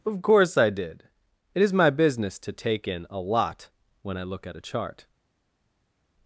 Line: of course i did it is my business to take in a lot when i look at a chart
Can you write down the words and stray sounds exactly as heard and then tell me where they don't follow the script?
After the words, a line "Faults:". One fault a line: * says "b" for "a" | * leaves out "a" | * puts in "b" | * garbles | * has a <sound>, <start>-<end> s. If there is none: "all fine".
of course i did it is my business to take in a lot when i look at a chart
Faults:
all fine